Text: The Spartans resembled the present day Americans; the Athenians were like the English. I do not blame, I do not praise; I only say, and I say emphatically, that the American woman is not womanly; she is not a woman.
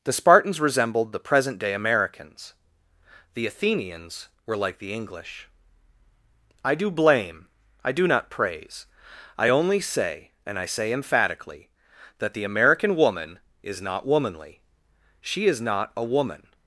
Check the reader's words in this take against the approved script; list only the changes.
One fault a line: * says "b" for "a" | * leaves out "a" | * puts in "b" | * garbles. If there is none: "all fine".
* leaves out "not"